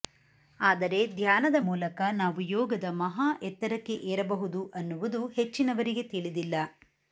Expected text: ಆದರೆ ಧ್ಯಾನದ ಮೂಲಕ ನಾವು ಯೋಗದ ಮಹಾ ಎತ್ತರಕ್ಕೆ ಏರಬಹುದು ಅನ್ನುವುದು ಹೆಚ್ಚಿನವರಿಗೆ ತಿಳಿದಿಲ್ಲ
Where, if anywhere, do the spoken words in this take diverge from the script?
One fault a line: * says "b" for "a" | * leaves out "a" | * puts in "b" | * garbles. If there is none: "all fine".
all fine